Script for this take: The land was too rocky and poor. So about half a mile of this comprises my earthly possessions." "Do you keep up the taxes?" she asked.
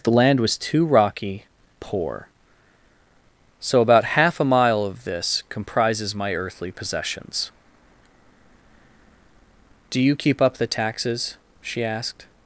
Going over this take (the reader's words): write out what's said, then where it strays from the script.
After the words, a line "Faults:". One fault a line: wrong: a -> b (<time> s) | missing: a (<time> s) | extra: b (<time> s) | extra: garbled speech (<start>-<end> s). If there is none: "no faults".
The land was too rocky poor. So about half a mile of this comprises my earthly possessions." "Do you keep up the taxes?" she asked.
Faults:
missing: and (1.4 s)